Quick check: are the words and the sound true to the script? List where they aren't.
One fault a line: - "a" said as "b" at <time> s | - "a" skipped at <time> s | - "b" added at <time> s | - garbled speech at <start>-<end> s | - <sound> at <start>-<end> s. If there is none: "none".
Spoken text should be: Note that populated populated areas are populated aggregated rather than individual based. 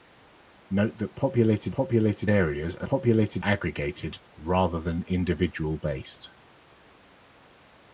none